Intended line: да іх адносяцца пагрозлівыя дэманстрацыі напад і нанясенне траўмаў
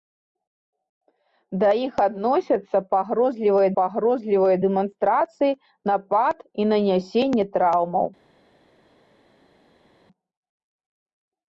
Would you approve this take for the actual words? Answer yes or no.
no